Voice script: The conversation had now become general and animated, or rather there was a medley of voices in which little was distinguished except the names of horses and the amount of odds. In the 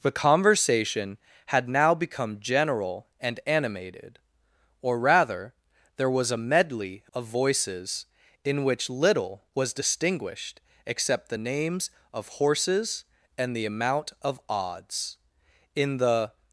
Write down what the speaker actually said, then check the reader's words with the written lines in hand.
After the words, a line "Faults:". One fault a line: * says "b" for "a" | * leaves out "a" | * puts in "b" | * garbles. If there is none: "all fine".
The conversation had now become general and animated, or rather there was a medley of voices in which little was distinguished except the names of horses and the amount of odds. In the
Faults:
all fine